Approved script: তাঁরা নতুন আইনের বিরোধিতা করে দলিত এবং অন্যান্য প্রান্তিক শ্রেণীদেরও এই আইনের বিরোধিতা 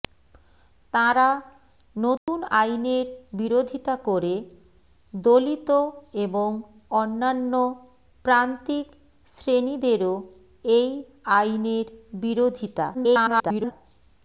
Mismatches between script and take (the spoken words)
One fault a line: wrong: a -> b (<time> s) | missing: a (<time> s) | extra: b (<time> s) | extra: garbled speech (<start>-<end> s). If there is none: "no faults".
extra: garbled speech (12.9-13.7 s)